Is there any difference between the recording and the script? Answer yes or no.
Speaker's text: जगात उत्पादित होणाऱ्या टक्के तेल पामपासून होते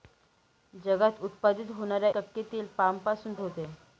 no